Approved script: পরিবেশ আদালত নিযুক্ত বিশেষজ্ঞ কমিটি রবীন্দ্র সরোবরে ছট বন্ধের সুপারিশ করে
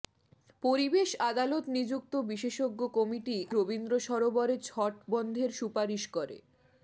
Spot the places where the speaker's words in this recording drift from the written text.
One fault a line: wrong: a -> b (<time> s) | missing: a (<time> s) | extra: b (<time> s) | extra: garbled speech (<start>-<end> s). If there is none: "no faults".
no faults